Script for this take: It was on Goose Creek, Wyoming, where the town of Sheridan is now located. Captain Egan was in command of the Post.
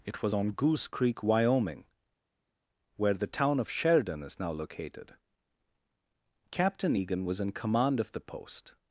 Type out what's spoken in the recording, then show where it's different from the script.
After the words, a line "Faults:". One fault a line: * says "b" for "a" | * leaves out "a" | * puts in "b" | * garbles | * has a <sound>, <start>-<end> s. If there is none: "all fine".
It was on Goose Creek, Wyoming, where the town of Sheridan is now located. Captain Egan was in command of the Post.
Faults:
all fine